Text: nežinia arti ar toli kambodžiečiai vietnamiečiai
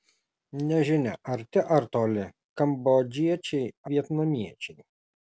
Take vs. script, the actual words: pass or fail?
pass